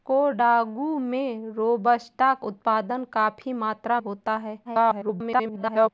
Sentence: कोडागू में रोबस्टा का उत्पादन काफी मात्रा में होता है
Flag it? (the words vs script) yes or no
yes